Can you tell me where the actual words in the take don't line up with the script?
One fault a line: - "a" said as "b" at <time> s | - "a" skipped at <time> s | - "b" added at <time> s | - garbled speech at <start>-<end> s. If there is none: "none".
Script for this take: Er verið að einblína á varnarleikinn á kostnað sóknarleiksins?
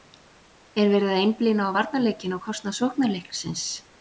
none